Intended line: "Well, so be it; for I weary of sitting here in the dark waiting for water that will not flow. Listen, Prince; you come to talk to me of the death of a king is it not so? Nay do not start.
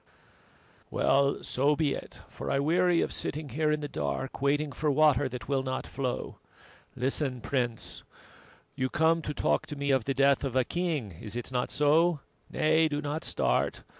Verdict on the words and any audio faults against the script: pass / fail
pass